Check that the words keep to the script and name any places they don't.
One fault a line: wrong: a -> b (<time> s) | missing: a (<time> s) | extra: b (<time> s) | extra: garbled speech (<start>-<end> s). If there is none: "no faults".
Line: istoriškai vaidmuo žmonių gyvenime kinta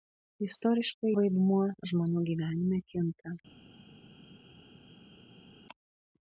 no faults